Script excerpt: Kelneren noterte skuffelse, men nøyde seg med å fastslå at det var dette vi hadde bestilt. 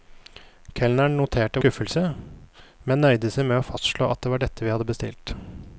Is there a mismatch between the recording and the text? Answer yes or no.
no